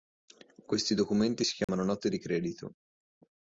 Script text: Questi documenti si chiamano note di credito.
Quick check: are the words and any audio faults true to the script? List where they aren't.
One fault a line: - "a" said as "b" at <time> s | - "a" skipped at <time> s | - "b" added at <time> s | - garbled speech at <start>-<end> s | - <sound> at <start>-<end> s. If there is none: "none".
- dropout at 1.6-1.7 s